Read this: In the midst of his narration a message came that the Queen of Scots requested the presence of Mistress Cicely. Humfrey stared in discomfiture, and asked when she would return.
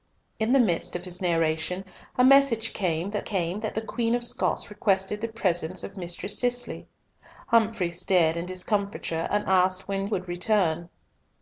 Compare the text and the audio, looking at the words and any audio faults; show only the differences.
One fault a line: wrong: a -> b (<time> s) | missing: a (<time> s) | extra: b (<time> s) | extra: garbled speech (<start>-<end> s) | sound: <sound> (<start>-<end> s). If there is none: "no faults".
extra: came that (3.2 s)
missing: she (10.1 s)